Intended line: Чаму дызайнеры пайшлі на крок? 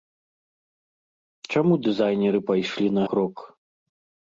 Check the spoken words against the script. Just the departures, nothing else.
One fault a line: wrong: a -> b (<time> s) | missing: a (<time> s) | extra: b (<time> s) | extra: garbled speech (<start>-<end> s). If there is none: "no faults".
no faults